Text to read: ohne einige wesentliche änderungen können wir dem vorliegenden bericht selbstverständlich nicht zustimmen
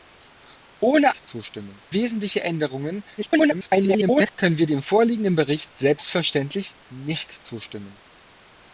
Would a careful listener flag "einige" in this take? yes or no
yes